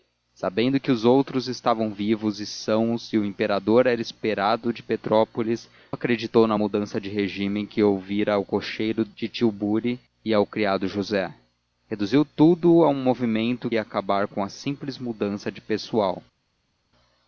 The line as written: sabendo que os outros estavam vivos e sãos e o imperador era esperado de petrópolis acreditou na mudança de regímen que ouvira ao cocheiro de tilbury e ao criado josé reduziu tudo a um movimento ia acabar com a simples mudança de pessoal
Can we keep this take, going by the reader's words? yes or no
yes